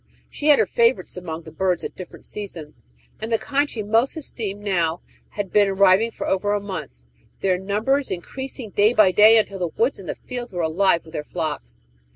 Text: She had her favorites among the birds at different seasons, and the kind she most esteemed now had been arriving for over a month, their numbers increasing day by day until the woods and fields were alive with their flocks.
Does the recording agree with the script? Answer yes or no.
yes